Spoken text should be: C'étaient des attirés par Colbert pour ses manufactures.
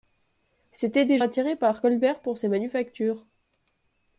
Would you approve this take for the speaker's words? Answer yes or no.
yes